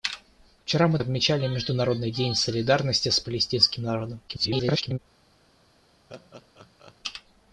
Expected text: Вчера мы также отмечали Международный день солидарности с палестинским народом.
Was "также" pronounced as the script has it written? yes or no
no